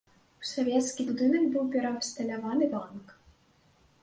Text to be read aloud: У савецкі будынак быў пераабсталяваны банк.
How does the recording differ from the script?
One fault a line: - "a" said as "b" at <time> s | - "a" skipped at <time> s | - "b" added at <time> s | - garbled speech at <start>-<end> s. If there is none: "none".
none